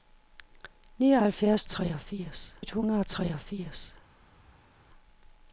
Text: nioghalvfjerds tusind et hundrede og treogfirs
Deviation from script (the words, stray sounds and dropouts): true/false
true